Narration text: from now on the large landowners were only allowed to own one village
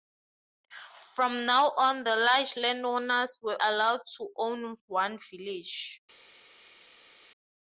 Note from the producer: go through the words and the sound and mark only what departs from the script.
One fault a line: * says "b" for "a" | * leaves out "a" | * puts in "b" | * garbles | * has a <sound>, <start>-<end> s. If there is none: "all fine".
* leaves out "only"